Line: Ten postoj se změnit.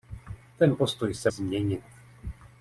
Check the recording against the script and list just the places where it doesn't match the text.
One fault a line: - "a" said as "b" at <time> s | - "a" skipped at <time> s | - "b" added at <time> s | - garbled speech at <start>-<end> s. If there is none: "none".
none